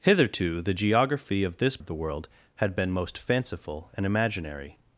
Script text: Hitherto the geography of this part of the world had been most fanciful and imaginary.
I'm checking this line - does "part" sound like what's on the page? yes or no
no